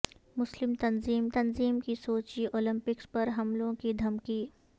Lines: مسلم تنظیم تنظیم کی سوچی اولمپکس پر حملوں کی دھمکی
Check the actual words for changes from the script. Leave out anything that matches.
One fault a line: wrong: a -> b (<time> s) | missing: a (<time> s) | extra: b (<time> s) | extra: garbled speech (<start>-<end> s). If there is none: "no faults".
no faults